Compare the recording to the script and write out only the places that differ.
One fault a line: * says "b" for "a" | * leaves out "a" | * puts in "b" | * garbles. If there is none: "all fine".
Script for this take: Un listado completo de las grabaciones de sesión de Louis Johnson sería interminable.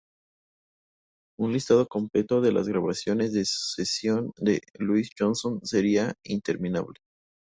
all fine